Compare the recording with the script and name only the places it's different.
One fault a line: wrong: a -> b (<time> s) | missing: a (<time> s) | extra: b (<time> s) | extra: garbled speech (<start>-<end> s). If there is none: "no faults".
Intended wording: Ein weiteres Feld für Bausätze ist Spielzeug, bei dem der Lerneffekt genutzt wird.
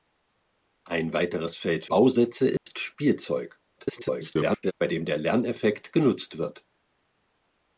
missing: für (1.9 s)
extra: garbled speech (3.8-4.7 s)